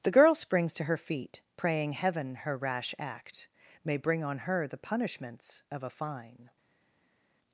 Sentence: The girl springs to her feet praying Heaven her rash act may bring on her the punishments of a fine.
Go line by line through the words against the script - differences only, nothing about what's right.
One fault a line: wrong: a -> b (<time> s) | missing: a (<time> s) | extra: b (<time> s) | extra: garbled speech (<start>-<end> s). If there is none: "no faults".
no faults